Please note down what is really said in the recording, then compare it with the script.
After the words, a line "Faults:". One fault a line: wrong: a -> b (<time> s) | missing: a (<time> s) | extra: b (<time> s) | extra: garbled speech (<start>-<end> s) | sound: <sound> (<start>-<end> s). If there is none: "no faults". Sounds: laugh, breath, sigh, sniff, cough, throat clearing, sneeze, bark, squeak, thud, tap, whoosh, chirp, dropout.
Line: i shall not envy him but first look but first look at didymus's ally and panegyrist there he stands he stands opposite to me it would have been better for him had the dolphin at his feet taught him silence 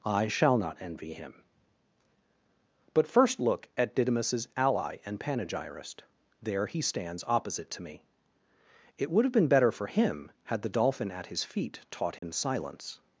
i shall not envy him but first look at didymus's ally and panegyrist there he stands opposite to me it would have been better for him had the dolphin at his feet taught him silence
Faults:
missing: but first look (3.7 s)
missing: he stands (7.2 s)
sound: dropout (12.2-12.2 s)